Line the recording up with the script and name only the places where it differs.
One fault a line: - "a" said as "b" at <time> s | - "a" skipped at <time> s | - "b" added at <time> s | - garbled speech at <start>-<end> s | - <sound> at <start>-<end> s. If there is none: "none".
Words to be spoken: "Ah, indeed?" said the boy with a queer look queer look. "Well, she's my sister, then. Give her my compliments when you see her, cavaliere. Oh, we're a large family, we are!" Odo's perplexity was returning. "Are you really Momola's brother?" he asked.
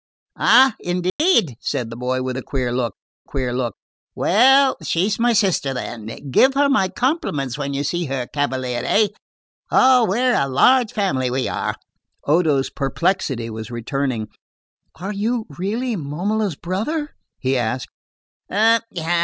- dropout at 1.1-1.2 s